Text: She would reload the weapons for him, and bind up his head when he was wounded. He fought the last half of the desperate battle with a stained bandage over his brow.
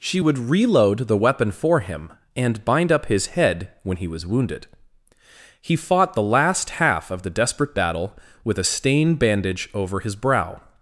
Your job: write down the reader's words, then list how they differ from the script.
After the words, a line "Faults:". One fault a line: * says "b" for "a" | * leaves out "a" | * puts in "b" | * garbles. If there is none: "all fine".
She would reload the weapon for him, and bind up his head when he was wounded. He fought the last half of the desperate battle with a stain bandage over his brow.
Faults:
* says "weapon" for "weapons"
* says "stain" for "stained"